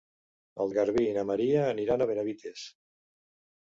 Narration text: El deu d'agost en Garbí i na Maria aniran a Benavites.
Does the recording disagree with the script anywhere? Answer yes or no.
yes